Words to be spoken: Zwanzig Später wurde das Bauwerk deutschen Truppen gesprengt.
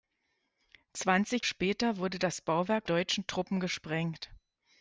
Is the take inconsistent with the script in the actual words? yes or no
no